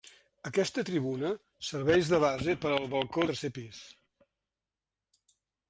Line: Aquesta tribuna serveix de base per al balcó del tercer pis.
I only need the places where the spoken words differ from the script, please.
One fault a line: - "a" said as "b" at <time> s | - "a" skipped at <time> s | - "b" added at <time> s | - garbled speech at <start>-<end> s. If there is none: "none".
- "del" skipped at 3.3 s